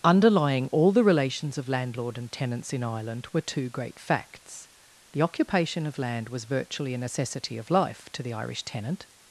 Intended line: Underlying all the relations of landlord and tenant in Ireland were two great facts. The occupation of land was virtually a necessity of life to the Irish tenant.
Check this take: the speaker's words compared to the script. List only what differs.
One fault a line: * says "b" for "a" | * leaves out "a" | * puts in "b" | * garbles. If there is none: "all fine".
* says "tenants" for "tenant"